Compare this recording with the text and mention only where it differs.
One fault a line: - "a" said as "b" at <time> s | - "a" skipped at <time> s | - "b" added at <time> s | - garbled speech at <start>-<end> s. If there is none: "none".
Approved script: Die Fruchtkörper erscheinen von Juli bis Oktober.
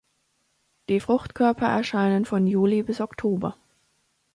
none